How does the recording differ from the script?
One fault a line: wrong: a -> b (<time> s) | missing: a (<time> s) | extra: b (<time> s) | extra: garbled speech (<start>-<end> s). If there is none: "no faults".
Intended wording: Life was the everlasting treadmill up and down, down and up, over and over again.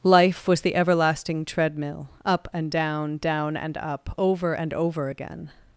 no faults